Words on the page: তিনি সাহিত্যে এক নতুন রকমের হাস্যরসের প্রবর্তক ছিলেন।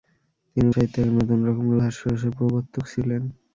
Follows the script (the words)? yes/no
yes